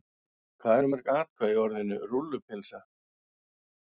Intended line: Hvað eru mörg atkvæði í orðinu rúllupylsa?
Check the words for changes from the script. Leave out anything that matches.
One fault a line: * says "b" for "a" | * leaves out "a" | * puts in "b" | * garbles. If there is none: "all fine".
all fine